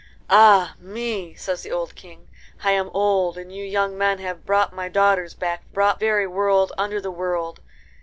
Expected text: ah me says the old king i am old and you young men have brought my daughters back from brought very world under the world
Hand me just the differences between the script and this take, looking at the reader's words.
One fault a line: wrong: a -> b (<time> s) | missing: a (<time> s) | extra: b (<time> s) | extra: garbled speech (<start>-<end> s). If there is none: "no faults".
no faults